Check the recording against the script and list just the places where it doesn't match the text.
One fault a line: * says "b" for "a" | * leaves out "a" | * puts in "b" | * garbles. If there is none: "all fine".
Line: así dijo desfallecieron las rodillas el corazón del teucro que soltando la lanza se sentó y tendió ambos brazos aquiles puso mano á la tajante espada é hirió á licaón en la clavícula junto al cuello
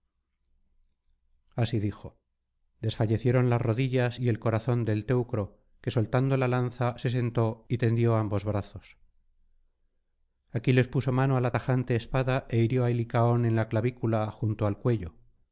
* puts in "y"